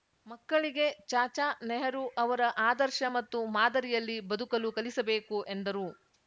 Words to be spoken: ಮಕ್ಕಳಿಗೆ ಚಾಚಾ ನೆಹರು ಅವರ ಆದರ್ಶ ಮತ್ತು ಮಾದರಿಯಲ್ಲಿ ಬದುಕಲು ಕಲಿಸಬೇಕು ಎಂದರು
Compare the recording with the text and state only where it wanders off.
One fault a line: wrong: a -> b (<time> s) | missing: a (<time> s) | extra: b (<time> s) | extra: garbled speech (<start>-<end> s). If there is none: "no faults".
no faults